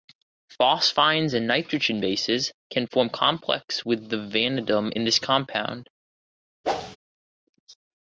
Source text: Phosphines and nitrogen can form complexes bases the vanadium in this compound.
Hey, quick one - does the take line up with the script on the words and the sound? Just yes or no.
no